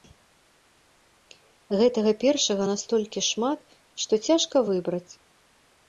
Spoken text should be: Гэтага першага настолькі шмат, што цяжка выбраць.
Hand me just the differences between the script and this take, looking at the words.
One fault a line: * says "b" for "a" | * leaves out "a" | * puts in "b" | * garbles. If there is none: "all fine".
all fine